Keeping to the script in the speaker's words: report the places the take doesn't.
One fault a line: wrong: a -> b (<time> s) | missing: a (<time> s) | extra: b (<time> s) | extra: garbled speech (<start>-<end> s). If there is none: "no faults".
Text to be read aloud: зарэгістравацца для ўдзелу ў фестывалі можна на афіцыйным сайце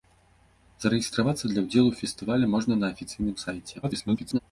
extra: garbled speech (3.8-4.4 s)